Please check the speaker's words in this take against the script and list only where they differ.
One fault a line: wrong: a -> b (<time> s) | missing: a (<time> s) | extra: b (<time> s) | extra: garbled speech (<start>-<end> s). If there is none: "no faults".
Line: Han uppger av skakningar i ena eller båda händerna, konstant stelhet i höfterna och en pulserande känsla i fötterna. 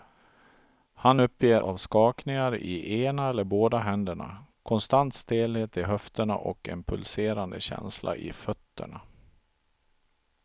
no faults